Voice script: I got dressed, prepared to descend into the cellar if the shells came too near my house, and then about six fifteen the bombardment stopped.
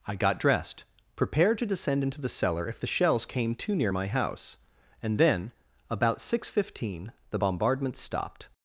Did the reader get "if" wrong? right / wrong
right